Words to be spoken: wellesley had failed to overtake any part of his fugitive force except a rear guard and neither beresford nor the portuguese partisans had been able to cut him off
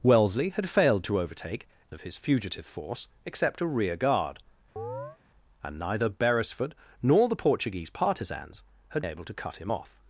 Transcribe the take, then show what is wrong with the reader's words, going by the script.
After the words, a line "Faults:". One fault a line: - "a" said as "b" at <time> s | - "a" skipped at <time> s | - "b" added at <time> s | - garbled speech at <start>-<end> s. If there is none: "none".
wellesley had failed to overtake of his fugitive force except a rear guard and neither beresford nor the portuguese partisans had able to cut him off
Faults:
- "any part" skipped at 1.7 s
- "been" skipped at 9.0 s